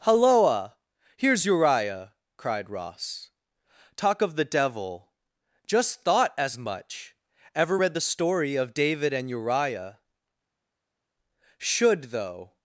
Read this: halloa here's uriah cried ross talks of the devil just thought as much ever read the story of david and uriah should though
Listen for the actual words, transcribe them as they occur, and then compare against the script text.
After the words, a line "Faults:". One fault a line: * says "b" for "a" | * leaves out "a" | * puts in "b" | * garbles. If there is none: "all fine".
halloa here's uriah cried ross talk of the devil just thought as much ever read the story of david and uriah should though
Faults:
* says "talk" for "talks"